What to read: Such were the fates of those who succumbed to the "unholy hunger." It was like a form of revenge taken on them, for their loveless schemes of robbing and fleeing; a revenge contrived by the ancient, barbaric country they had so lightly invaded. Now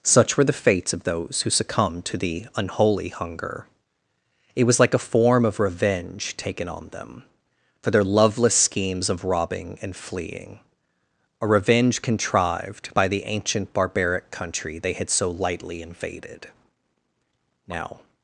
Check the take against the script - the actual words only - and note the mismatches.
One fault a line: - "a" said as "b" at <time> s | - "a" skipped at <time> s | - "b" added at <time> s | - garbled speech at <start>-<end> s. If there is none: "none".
none